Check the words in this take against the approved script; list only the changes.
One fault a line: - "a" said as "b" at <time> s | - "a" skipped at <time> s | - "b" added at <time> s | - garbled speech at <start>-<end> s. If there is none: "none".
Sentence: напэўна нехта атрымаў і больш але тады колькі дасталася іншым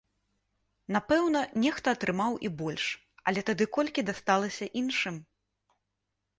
none